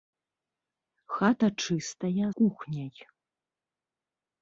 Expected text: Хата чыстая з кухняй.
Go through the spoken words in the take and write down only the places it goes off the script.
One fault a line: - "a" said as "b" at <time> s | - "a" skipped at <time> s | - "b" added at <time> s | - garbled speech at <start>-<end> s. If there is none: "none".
- "з" skipped at 2.3 s